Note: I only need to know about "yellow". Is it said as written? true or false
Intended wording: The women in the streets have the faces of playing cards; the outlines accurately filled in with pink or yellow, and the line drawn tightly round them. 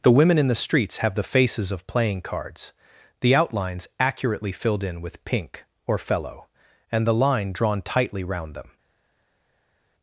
false